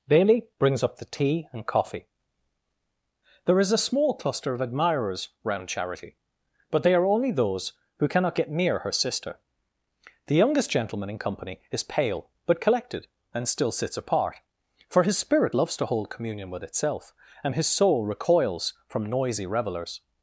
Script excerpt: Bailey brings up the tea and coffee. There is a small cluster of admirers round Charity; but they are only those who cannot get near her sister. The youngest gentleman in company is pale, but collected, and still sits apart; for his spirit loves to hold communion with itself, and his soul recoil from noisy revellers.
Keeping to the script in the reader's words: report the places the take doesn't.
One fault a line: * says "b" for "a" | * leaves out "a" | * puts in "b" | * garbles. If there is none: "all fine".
* says "recoils" for "recoil"